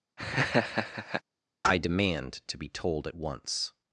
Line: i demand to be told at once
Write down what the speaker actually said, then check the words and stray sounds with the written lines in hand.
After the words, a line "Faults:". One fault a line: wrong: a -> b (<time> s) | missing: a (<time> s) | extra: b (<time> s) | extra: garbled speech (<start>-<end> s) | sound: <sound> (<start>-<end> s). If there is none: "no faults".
i demand to be told at once
Faults:
sound: laugh (0.2-1.2 s)